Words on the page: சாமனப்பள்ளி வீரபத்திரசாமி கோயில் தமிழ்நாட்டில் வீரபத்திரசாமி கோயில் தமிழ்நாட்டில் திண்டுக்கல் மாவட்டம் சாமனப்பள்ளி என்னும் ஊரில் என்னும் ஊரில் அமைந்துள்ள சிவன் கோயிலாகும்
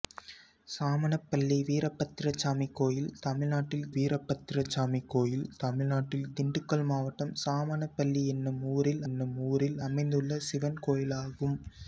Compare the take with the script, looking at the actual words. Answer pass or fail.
pass